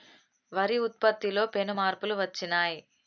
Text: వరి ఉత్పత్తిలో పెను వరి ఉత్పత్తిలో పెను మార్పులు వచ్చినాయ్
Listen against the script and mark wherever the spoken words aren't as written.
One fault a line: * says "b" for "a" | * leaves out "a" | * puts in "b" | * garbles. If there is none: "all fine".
* leaves out "వరి ఉత్పత్తిలో పెను"